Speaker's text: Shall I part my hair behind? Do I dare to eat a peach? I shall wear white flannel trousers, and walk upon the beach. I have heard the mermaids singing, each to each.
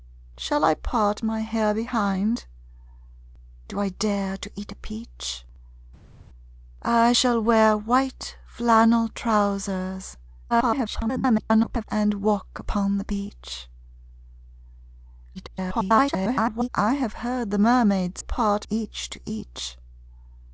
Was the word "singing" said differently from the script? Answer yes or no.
yes